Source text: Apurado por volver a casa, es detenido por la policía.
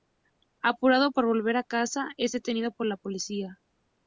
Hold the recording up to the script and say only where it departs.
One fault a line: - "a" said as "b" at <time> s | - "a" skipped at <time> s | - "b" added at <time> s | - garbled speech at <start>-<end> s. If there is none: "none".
none